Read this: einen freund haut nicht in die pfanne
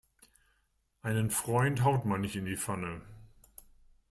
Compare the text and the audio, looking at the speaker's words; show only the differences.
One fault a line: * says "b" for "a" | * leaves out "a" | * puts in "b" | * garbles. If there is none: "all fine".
* puts in "man"